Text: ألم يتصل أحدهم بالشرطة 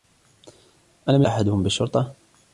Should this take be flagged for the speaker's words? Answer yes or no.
yes